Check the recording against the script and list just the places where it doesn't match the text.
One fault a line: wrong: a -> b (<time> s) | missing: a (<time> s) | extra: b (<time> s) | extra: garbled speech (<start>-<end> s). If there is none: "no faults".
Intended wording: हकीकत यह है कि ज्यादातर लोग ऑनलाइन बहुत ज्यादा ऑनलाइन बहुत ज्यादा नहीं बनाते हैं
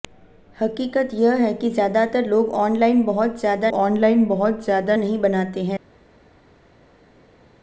no faults